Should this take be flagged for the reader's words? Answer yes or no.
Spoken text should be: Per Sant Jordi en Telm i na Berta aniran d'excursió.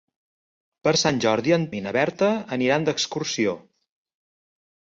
yes